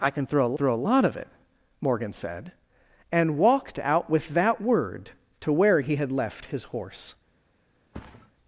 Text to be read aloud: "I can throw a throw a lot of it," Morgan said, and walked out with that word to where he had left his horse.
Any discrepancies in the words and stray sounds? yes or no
yes